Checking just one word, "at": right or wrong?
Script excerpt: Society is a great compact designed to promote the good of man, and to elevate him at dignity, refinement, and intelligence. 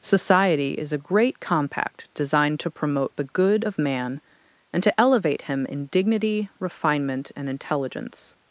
wrong